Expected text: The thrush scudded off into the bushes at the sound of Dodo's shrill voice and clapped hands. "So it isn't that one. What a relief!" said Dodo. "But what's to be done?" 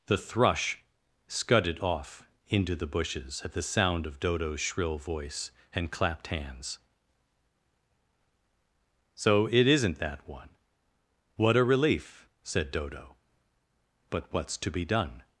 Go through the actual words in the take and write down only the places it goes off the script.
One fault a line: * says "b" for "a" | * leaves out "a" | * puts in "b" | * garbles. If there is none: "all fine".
all fine